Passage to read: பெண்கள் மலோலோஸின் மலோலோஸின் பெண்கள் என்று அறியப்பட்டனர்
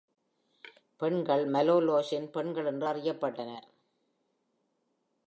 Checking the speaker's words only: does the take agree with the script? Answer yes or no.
no